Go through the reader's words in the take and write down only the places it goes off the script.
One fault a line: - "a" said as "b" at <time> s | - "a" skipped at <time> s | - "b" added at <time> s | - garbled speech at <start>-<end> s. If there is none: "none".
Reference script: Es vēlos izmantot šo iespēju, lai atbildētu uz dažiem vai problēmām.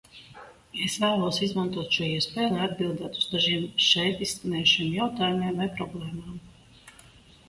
- "šeit izskanējušiem jautājumiem" added at 3.8 s